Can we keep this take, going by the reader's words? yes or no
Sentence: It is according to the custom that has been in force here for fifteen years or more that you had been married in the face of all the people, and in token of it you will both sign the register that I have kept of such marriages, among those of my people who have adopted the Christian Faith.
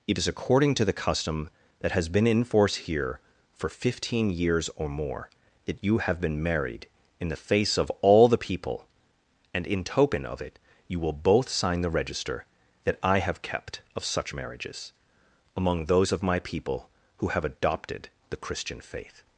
no